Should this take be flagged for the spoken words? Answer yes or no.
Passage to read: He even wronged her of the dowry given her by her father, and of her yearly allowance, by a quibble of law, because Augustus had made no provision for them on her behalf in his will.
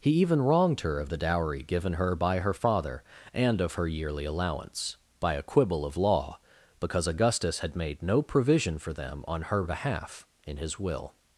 no